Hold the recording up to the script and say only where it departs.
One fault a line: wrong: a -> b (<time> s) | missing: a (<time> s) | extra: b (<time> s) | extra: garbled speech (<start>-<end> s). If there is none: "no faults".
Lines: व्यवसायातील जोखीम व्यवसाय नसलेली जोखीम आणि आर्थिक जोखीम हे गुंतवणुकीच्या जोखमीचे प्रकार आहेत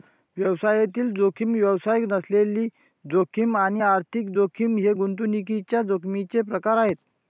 no faults